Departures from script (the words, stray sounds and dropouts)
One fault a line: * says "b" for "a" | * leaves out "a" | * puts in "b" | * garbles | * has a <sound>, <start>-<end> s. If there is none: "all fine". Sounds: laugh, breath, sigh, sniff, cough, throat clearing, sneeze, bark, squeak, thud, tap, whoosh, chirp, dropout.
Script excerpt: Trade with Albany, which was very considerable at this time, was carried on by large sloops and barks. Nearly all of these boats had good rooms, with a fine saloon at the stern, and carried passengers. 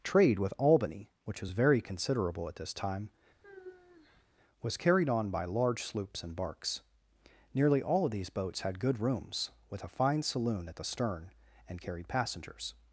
* has a sigh, 3.4-4.2 s